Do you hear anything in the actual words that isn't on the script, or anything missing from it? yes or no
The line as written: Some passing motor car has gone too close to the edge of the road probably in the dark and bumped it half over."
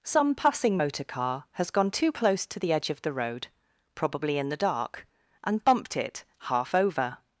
no